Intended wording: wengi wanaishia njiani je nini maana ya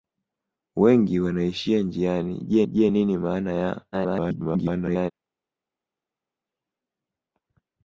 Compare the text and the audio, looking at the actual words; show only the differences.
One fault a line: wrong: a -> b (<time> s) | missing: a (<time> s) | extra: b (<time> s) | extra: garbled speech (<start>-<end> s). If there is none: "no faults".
extra: je (2.6 s)
extra: garbled speech (3.9-5.1 s)